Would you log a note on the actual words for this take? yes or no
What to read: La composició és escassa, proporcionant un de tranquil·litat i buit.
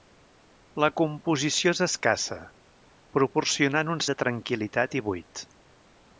no